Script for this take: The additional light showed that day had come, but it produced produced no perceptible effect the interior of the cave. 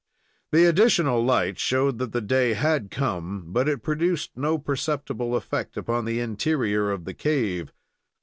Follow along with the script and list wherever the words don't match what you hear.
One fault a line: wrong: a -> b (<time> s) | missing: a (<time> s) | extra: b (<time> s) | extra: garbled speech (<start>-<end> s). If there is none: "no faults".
extra: the (2.1 s)
missing: produced (4.3 s)
extra: upon (5.8 s)